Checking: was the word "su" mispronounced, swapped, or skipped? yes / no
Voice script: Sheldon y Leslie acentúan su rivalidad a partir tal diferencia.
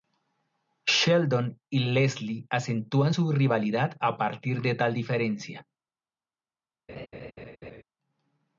no